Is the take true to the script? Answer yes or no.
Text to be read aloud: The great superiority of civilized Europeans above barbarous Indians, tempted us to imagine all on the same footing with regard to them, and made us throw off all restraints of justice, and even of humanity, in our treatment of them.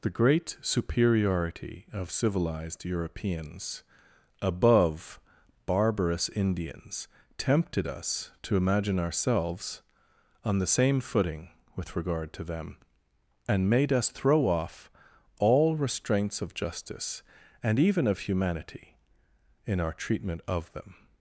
no